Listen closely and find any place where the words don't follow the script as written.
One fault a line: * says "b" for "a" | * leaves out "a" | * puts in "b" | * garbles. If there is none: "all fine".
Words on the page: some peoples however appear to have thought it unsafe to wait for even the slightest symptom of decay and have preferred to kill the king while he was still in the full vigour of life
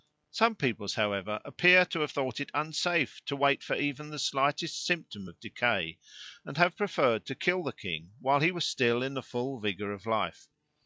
all fine